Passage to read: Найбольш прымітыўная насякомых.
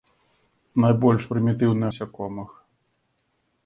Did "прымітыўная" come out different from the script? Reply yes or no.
no